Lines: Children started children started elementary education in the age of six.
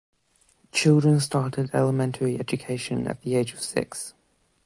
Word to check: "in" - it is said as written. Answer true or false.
false